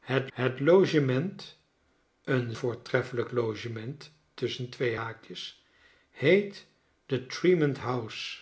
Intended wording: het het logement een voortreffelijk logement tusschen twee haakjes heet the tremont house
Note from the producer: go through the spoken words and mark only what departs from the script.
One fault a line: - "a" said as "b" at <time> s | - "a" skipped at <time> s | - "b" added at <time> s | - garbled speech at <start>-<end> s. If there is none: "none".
none